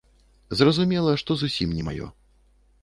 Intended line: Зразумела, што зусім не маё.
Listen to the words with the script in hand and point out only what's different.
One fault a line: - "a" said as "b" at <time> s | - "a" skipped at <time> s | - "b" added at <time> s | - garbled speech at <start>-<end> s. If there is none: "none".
none